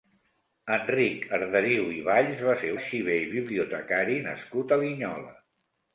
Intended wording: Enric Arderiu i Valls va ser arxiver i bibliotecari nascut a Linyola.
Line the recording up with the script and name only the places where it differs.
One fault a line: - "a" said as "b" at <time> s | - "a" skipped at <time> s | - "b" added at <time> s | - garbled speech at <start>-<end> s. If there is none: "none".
none